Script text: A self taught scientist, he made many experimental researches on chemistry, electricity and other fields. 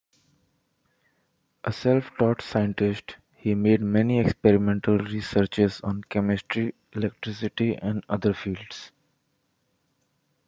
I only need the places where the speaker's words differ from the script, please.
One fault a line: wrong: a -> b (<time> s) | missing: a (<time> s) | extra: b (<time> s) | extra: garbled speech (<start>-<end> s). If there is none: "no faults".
no faults